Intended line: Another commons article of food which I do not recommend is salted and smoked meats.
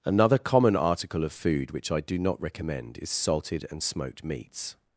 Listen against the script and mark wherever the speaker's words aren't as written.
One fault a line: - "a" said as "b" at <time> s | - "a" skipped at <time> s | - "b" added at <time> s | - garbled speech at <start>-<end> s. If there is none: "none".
- "commons" said as "common" at 0.4 s